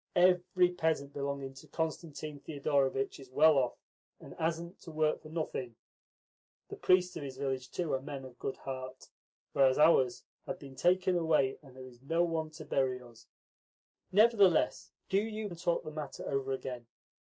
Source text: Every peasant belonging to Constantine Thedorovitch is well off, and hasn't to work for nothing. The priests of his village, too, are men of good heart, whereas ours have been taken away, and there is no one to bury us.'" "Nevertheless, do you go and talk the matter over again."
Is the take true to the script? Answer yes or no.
no